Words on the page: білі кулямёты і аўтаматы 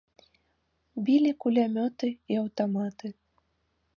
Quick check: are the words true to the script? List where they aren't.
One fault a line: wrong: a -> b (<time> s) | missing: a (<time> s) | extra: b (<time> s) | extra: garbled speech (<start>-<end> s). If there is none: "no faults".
no faults